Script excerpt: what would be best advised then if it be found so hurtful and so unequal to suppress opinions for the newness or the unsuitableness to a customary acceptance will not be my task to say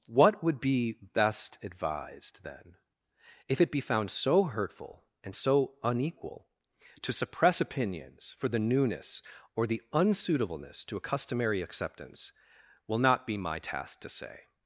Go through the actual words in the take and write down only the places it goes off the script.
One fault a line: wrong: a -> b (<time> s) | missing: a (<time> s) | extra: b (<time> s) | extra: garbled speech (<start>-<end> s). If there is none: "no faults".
no faults